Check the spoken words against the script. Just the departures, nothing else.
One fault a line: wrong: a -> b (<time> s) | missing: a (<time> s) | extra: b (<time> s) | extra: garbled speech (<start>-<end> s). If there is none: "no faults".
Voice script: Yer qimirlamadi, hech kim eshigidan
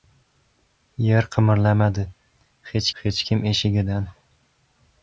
extra: hech (3.0 s)